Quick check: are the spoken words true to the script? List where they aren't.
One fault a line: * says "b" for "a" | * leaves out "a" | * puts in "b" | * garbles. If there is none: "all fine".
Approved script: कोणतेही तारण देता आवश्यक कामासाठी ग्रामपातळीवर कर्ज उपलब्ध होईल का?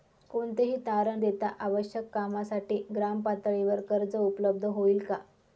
all fine